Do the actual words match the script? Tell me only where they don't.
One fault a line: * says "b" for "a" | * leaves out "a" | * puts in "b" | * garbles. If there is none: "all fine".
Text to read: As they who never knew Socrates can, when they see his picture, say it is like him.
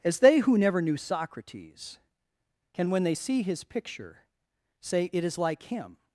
all fine